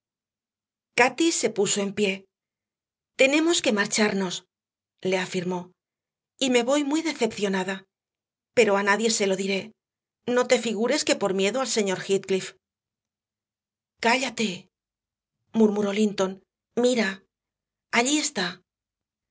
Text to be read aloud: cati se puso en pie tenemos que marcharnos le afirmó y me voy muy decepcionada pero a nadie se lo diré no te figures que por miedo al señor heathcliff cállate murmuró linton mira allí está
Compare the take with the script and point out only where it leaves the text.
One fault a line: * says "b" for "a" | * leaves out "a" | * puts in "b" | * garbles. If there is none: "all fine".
all fine